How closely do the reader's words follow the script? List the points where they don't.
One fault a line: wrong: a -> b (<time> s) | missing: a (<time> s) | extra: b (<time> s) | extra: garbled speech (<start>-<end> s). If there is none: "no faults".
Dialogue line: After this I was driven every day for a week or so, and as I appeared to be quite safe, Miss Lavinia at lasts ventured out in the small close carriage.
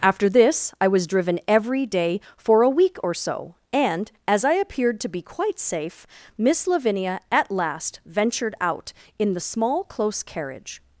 wrong: lasts -> last (7.5 s)